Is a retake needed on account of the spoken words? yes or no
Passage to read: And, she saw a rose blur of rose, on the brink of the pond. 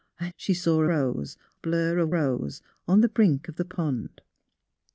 no